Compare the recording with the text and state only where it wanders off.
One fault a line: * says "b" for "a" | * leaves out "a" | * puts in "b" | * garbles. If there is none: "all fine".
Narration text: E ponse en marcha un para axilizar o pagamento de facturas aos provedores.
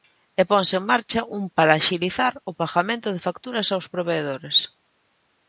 all fine